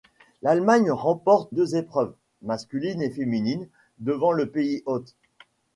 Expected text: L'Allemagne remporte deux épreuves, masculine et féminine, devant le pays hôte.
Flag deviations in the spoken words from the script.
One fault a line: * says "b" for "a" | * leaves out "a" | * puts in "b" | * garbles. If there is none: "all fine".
all fine